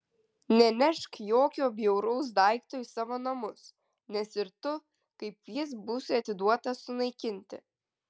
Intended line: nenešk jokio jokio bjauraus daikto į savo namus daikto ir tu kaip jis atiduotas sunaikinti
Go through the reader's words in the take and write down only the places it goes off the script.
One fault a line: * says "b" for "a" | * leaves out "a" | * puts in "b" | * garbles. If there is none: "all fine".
* leaves out "jokio"
* says "nes" for "daikto"
* puts in "būsi"